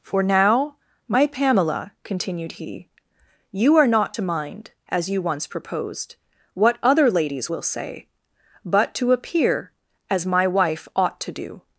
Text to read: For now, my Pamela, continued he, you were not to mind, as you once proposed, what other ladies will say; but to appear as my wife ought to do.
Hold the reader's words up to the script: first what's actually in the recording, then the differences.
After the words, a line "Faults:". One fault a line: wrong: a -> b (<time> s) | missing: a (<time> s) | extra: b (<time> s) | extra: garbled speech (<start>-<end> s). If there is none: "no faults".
For now, my Pamela, continued he, you are not to mind, as you once proposed, what other ladies will say; but to appear as my wife ought to do.
Faults:
wrong: were -> are (3.8 s)